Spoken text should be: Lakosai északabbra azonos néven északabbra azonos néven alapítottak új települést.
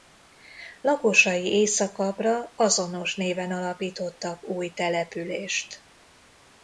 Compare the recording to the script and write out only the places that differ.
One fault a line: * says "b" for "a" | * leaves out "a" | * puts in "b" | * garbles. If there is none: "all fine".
* leaves out "északabbra azonos néven"